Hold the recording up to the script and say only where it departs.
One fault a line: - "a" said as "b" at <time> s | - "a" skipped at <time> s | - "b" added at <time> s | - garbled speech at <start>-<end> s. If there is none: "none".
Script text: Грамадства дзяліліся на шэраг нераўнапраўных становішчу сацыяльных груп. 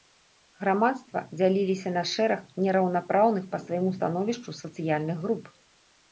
- "па свайму" added at 3.5 s